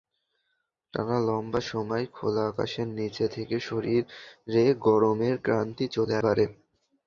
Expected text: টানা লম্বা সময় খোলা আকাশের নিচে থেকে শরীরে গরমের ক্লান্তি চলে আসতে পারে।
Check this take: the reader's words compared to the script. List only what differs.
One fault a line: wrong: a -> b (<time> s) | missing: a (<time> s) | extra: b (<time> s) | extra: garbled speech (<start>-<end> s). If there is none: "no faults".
missing: আসতে (6.1 s)